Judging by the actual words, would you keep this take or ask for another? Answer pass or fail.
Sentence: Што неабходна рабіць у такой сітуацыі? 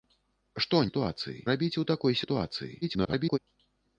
fail